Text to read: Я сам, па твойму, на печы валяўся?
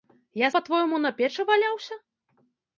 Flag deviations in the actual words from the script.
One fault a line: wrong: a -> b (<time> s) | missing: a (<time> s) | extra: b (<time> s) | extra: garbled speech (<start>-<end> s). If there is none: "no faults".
missing: сам (0.5 s)